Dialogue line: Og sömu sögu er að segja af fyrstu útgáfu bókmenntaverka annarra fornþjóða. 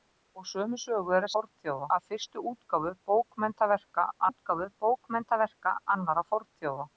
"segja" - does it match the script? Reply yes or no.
no